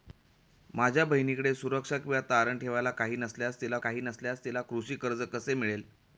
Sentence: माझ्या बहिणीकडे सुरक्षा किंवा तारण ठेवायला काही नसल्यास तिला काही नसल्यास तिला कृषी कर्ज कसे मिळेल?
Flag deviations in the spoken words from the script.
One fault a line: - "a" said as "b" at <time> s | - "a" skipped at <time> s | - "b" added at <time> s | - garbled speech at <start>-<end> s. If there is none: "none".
none